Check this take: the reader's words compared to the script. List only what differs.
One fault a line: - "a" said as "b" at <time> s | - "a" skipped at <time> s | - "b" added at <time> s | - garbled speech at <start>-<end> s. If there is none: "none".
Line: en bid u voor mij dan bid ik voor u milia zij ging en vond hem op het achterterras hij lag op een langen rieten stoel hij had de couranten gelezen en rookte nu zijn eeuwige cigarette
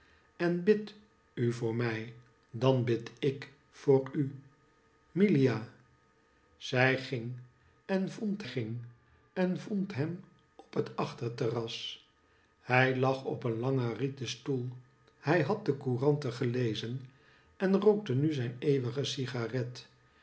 - "ging en vond" added at 8.4 s